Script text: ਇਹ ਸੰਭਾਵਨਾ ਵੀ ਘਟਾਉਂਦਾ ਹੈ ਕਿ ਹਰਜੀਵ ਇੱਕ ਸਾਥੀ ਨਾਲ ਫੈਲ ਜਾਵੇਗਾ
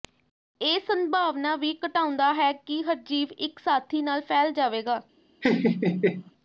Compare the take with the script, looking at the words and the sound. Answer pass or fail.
fail